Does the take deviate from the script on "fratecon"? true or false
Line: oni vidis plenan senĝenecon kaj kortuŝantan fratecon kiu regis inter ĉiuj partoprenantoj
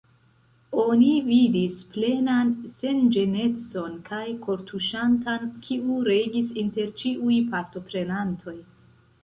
true